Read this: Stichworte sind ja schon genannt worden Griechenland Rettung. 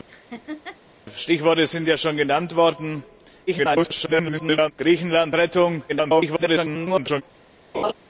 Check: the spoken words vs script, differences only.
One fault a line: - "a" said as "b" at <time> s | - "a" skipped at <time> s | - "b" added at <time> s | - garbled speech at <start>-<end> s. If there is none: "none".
- garbled speech at 3.5-4.7 s
- garbled speech at 5.9-7.2 s